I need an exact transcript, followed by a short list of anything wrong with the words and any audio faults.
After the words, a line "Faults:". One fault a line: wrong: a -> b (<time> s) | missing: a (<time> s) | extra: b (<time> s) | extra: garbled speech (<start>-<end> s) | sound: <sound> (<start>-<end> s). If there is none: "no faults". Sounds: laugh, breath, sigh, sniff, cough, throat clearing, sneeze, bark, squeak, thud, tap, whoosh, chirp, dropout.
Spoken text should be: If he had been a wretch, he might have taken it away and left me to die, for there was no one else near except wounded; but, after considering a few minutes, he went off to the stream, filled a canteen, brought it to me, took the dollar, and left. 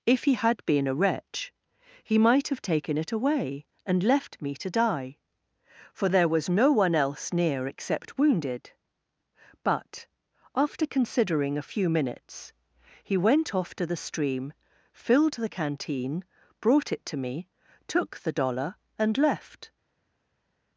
If he had been a wretch, he might have taken it away and left me to die, for there was no one else near except wounded; but, after considering a few minutes, he went off to the stream, filled the canteen, brought it to me, took the dollar, and left.
Faults:
wrong: a -> the (15.3 s)